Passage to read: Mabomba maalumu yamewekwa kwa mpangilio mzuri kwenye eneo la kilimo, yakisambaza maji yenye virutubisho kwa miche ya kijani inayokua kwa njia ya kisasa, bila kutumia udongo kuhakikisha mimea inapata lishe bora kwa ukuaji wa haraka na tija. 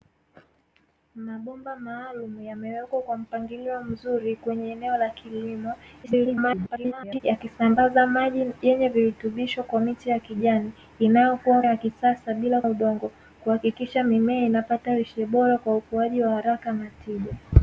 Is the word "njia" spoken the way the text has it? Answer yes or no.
no